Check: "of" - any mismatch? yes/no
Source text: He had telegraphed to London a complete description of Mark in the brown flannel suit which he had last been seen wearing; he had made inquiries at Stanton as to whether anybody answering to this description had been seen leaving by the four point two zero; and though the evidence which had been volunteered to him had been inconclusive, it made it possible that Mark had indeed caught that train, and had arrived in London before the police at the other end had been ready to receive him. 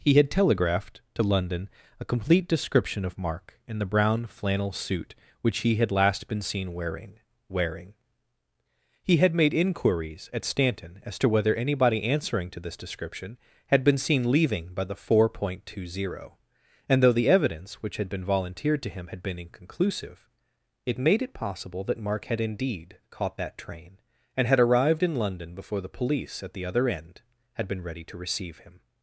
no